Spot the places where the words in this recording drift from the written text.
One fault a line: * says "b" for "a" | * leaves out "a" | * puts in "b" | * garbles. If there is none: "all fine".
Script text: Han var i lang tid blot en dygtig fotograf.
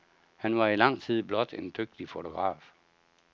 all fine